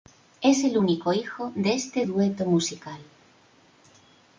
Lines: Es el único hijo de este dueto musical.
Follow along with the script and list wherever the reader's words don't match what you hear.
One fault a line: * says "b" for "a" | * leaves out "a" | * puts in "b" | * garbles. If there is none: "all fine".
all fine